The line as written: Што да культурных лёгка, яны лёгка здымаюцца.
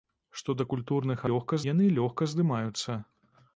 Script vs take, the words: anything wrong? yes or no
no